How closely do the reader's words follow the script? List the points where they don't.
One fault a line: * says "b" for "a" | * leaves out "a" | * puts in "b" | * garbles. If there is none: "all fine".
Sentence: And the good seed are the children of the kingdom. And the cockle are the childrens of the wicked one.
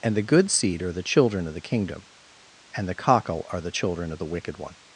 * says "children" for "childrens"